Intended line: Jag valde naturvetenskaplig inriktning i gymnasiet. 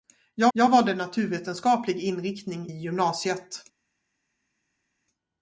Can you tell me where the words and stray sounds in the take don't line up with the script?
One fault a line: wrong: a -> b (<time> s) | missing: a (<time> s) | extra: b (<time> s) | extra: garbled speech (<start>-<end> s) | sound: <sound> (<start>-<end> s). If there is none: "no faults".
extra: jag (0.5 s)
missing: i (2.7 s)